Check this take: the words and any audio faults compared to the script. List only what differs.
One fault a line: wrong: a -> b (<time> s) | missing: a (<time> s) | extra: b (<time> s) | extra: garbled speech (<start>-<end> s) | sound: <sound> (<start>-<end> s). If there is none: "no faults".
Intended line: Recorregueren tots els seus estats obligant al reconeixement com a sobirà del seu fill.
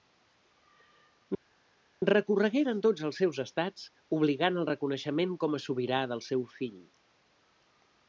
no faults